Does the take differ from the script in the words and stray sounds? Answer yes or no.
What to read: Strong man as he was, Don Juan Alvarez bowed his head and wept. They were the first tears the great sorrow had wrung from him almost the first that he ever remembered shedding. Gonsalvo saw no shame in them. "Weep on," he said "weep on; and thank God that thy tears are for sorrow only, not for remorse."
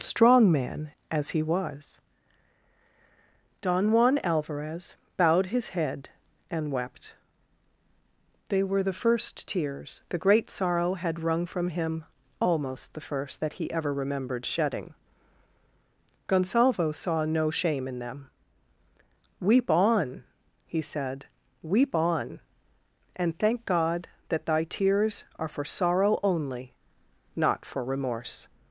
no